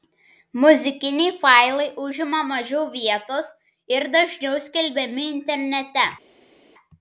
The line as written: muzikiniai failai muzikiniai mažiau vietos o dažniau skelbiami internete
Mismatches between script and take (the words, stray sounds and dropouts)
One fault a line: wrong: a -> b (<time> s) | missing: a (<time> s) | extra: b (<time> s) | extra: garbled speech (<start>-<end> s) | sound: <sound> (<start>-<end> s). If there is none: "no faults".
wrong: muzikiniai -> užima (2.0 s)
wrong: o -> ir (4.0 s)